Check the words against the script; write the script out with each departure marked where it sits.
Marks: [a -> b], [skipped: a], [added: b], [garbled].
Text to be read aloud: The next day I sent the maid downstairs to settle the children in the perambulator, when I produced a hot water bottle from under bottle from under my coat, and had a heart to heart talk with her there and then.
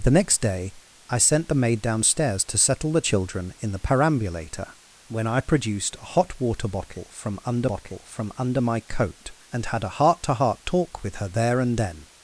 The next day I sent the maid downstairs to settle the children in the perambulator, when I produced a hot water bottle from under bottle from under my coat, and had a heart to heart talk with her there and then.